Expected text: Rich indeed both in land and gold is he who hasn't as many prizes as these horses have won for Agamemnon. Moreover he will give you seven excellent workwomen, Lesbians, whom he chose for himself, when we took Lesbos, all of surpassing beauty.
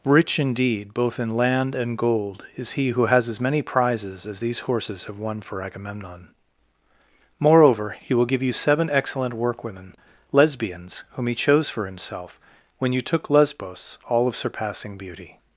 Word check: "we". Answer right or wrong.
wrong